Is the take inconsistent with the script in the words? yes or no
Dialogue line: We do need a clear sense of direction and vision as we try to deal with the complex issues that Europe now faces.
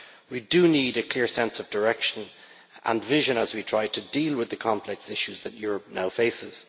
no